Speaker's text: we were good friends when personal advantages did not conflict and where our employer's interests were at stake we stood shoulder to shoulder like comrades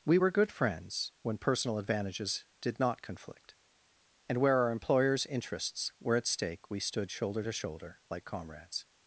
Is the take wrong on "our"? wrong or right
right